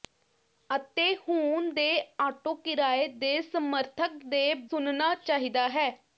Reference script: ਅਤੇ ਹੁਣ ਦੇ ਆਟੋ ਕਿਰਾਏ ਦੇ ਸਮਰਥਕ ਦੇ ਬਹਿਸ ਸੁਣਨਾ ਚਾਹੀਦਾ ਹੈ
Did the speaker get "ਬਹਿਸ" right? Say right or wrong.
wrong